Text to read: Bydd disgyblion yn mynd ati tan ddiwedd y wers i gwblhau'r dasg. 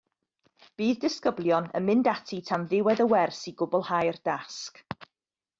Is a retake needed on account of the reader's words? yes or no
no